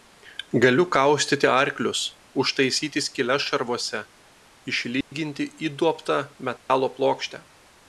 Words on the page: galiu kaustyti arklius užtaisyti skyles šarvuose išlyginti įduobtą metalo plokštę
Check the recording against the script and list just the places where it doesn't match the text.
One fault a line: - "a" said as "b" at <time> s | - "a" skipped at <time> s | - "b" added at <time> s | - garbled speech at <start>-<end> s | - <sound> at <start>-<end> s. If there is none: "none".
- dropout at 5.0-5.1 s
- dropout at 6.6-6.7 s